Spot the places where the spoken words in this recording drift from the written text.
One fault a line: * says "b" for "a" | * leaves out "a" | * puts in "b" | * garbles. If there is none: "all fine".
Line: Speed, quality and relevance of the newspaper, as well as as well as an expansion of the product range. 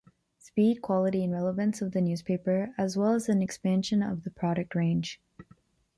* leaves out "as well as"